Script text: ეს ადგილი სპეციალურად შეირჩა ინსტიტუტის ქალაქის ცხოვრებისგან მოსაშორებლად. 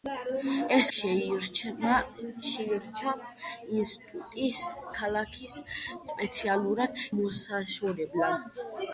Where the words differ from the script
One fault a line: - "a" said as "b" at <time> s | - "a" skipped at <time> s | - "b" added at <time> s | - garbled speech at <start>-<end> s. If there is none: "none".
- "ადგილი სპეციალურად" skipped at 0.9 s
- "ცხოვრებისგან" said as "სპეციალურად" at 6.1 s